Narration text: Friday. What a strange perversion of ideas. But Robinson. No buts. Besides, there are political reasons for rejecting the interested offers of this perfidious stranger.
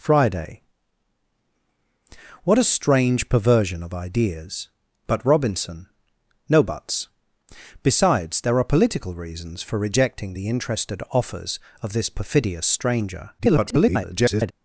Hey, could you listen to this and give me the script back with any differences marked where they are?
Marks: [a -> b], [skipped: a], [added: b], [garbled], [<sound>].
Friday. What a strange perversion of ideas. But Robinson. No buts. Besides, there are political reasons for rejecting the interested offers of this perfidious stranger. [garbled]